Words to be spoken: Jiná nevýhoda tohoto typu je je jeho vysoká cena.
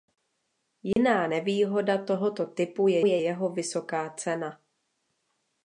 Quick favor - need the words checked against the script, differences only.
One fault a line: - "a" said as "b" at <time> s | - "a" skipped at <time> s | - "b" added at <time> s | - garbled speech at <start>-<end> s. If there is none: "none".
none